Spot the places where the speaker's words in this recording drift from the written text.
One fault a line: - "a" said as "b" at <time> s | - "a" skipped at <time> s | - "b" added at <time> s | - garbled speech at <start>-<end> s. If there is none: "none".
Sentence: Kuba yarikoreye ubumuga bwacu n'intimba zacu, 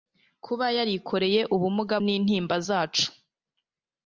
- "bwacu" skipped at 2.0 s